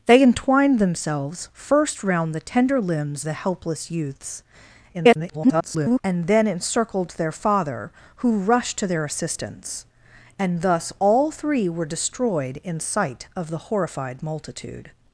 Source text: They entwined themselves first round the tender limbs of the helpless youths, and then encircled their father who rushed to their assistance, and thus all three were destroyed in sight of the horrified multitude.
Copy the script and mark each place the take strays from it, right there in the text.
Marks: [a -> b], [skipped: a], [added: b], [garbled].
They entwined themselves first round the tender limbs [skipped: of] the helpless youths, [garbled] and then encircled their father who rushed to their assistance, and thus all three were destroyed in sight of the horrified multitude.